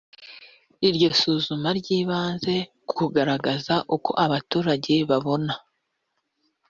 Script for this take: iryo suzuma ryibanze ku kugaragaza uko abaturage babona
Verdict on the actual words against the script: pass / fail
pass